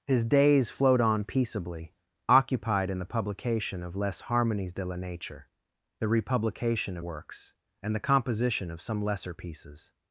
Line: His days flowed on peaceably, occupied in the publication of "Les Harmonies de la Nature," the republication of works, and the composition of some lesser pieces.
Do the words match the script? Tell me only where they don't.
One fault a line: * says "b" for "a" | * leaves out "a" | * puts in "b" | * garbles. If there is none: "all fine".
all fine